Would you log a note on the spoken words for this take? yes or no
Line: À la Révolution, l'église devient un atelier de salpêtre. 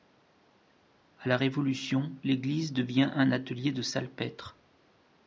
no